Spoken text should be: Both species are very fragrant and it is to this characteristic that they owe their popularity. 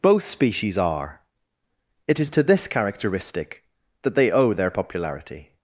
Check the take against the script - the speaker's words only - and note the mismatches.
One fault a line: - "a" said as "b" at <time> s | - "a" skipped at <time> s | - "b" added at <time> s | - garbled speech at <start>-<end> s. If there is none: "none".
- "very fragrant and" skipped at 1.2 s